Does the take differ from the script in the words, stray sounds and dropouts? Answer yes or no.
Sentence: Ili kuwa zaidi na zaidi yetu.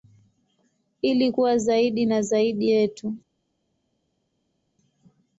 no